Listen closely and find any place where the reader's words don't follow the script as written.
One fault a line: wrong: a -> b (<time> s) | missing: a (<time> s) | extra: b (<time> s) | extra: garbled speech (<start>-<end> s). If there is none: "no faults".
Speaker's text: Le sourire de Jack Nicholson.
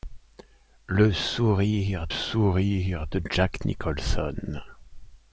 extra: sourire (2.1 s)